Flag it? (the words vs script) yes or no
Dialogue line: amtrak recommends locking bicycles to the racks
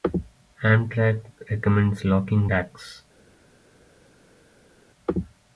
yes